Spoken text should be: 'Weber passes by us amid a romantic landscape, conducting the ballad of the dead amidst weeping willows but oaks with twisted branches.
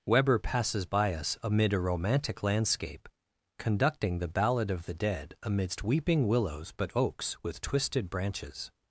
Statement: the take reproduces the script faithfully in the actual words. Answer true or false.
true